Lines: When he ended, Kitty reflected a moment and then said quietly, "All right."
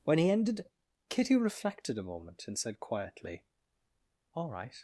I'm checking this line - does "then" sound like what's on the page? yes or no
no